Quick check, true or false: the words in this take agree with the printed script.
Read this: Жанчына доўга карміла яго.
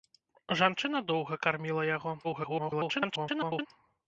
false